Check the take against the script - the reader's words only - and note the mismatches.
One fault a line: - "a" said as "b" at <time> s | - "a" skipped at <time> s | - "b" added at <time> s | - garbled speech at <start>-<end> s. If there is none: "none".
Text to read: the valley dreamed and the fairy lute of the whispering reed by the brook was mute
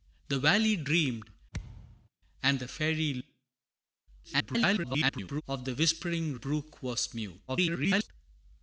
- garbled speech at 4.2-5.4 s
- "reed by the" skipped at 6.3 s
- garbled speech at 7.5-8.1 s